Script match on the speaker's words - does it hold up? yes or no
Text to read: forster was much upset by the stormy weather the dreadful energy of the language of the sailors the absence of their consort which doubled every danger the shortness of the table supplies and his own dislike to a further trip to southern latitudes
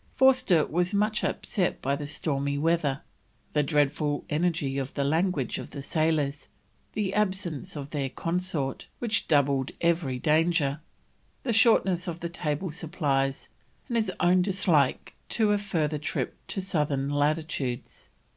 yes